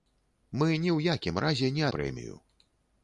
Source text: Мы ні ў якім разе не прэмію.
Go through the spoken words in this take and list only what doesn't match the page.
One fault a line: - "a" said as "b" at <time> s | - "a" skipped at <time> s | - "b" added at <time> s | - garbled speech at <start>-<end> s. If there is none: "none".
none